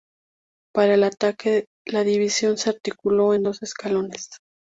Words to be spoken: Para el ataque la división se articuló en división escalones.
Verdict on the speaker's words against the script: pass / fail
fail